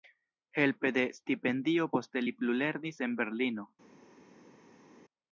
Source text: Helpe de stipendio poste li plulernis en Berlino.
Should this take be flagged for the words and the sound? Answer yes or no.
no